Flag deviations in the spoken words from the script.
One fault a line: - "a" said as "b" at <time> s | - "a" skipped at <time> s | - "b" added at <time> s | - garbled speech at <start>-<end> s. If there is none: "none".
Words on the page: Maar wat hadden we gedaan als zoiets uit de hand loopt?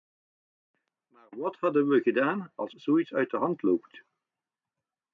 none